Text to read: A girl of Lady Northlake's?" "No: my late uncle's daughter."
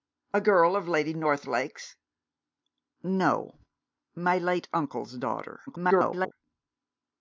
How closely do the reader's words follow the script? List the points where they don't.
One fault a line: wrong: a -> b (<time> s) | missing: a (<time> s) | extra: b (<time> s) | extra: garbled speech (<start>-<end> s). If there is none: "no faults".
extra: garbled speech (5.7-6.3 s)